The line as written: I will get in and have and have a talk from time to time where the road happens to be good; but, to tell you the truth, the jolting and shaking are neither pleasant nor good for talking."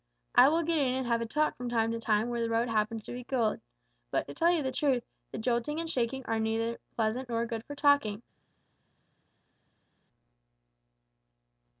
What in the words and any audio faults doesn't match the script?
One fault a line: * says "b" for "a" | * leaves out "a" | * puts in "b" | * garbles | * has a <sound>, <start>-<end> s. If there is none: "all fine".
* leaves out "and have"